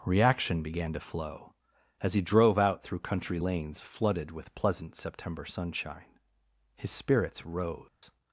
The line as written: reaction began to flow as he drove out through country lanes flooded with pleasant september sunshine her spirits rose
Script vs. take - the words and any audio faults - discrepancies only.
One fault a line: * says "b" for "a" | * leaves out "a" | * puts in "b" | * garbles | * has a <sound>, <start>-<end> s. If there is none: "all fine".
* says "his" for "her"
* has a dropout, 7.9-8.0 s